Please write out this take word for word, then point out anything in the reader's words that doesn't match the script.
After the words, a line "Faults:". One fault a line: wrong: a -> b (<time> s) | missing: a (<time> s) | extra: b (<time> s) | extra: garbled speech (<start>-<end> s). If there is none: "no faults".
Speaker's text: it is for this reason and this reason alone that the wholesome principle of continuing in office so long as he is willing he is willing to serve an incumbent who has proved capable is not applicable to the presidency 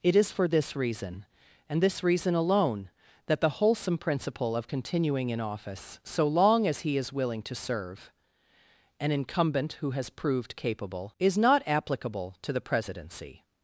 it is for this reason and this reason alone that the wholesome principle of continuing in office so long as he is willing to serve an incumbent who has proved capable is not applicable to the presidency
Faults:
missing: he is willing (7.4 s)